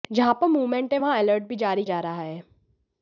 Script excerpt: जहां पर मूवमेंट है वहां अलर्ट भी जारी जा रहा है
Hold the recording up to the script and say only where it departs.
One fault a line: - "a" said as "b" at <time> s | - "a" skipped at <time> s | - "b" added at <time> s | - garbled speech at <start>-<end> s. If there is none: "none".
none